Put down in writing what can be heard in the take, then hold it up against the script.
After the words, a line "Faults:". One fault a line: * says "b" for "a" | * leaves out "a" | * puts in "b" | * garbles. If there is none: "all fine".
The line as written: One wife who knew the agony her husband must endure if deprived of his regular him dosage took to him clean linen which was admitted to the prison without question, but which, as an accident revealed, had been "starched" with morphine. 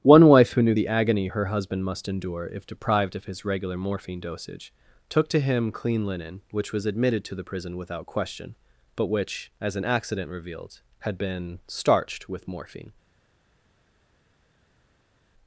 One wife who knew the agony her husband must endure if deprived of his regular morphine dosage took to him clean linen which was admitted to the prison without question, but which, as an accident revealed, had been "starched" with morphine.
Faults:
* says "morphine" for "him"